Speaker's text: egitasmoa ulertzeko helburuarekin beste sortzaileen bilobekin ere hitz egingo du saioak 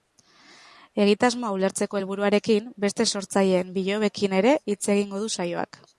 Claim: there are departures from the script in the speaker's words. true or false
false